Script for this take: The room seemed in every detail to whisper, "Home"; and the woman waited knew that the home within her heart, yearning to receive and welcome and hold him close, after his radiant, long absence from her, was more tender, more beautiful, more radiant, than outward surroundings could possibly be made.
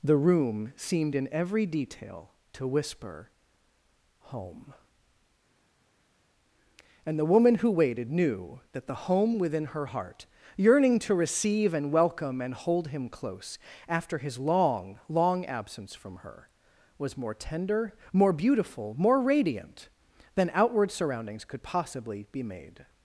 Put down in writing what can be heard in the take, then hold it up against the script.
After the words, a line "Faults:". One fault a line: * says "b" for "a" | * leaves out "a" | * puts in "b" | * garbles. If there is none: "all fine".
The room seemed in every detail to whisper, "Home"; and the woman who waited knew that the home within her heart, yearning to receive and welcome and hold him close, after his long, long absence from her, was more tender, more beautiful, more radiant, than outward surroundings could possibly be made.
Faults:
* puts in "who"
* says "long" for "radiant"